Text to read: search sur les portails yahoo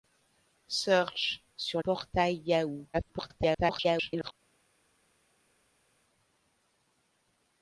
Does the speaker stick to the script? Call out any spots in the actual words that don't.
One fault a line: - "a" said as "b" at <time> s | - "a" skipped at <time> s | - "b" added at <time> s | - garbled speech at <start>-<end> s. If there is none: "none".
- "les" skipped at 1.8 s
- garbled speech at 2.9-4.3 s